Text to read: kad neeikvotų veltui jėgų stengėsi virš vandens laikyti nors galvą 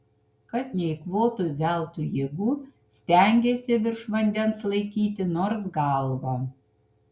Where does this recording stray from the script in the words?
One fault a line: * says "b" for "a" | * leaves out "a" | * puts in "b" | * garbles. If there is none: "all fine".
all fine